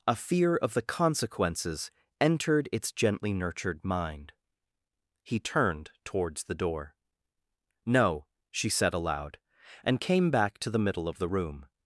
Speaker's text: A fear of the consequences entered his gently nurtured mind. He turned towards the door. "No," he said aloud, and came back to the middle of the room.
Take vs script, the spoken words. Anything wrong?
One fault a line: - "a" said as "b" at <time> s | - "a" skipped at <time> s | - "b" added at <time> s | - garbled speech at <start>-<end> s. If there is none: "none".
- "his" said as "its" at 2.7 s
- "he" said as "she" at 8.5 s